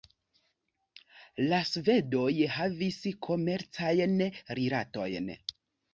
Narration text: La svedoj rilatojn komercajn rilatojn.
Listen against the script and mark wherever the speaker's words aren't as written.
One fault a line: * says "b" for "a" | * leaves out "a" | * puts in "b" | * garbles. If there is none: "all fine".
* says "havis" for "rilatojn"